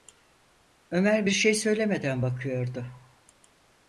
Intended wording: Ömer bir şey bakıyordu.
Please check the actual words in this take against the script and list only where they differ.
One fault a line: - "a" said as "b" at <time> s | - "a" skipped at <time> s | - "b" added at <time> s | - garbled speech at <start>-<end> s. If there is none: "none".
- "söylemeden" added at 1.5 s